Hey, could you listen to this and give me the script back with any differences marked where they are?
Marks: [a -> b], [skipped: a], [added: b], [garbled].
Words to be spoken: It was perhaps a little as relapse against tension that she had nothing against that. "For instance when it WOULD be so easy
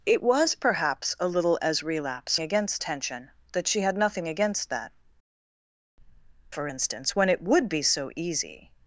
It was perhaps a little as relapse against tension that she had nothing against that. "For instance when it WOULD be so easy